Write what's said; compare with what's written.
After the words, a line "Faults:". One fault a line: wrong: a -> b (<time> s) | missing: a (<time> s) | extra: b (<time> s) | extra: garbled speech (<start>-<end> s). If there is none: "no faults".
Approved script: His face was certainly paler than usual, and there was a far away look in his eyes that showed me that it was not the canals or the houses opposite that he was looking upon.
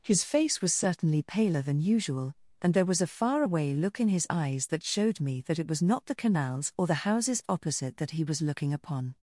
His face was certainly paler than usual, and there was a far away look in his eyes that showed me that it was not the canals or the houses opposite that he was looking upon.
Faults:
no faults